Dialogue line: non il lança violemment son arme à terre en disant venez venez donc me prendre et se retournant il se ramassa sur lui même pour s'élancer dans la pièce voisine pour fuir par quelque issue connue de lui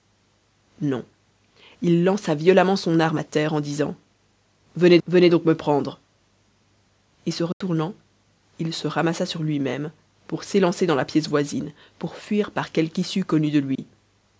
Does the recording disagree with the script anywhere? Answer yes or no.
no